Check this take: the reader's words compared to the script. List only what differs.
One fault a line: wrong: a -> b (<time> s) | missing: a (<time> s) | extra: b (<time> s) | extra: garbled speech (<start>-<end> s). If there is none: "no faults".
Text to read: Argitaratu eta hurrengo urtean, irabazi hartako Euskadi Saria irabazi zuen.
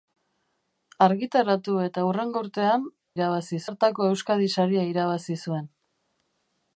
no faults